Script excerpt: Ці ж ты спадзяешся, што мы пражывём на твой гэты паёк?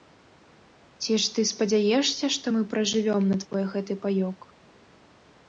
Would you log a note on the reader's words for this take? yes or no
no